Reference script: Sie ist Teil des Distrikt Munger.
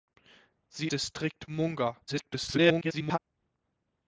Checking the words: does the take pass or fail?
fail